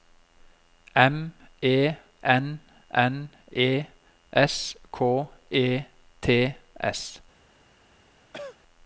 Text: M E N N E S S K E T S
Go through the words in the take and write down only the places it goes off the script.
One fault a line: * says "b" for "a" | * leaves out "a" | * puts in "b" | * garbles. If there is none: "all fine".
* leaves out "S"